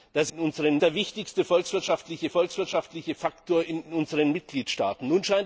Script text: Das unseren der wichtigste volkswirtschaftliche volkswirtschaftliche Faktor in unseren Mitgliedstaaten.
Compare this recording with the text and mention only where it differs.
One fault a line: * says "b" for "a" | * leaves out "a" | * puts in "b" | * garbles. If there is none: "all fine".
all fine